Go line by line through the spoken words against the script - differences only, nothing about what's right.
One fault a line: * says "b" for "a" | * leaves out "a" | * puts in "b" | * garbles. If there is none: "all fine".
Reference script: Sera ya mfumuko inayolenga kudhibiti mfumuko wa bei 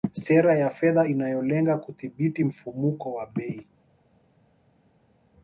* says "fedha" for "mfumuko"